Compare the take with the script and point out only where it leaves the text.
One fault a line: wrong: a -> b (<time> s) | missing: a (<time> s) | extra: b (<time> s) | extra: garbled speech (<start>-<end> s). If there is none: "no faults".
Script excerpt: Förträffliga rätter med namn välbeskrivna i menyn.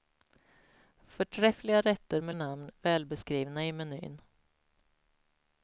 no faults